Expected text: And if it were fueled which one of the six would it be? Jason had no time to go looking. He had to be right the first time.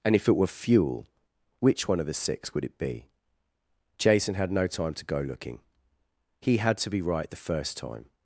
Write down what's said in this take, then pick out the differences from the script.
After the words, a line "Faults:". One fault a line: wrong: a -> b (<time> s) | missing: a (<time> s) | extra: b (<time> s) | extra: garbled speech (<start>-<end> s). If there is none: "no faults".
And if it were fuel which one of the six would it be? Jason had no time to go looking. He had to be right the first time.
Faults:
wrong: fueled -> fuel (0.5 s)